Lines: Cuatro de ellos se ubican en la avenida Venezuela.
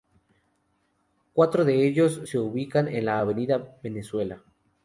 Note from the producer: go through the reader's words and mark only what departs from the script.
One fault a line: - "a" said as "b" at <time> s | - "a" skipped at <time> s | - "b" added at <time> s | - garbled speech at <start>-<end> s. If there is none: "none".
none